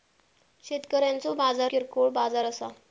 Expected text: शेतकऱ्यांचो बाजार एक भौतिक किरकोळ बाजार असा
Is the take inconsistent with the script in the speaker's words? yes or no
yes